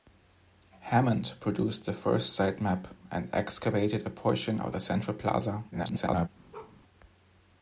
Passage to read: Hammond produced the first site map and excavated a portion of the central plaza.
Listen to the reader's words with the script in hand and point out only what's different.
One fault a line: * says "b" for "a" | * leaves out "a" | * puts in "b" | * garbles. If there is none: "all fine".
* garbles